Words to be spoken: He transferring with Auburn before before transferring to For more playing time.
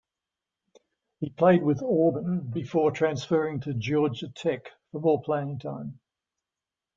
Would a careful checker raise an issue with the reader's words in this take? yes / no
yes